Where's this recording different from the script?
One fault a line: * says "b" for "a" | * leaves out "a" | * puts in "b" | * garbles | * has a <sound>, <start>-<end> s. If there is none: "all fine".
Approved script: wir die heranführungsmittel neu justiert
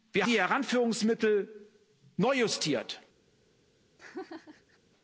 * has a laugh, 4.0-4.8 s